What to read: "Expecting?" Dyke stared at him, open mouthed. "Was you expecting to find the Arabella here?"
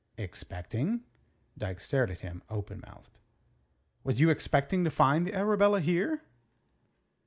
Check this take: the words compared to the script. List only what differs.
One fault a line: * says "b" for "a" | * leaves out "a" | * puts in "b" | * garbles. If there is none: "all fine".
all fine